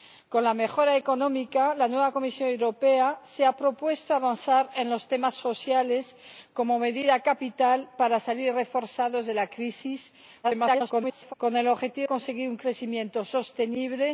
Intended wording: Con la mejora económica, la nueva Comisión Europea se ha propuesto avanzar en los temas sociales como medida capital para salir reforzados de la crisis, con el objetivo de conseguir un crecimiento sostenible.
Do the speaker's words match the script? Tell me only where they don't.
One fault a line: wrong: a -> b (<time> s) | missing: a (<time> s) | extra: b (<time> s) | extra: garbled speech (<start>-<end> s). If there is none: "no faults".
extra: garbled speech (10.4-11.3 s)
missing: de (12.1 s)